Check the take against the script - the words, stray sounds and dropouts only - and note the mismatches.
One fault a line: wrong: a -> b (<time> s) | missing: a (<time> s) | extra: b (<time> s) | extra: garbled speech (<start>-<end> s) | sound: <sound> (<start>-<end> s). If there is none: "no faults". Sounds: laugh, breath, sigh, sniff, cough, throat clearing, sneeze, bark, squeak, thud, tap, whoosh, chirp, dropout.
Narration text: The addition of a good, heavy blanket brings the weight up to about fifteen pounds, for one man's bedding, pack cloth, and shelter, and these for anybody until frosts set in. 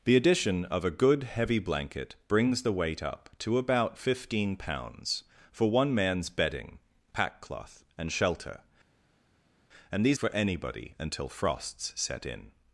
no faults